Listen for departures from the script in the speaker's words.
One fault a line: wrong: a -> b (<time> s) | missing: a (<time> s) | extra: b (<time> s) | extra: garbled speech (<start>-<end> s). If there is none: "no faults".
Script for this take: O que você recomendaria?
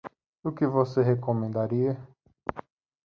no faults